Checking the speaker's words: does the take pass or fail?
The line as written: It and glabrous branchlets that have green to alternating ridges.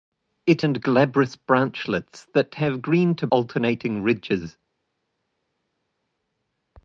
pass